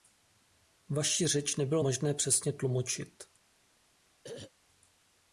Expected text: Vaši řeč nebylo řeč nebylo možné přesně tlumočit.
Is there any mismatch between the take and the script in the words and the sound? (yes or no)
yes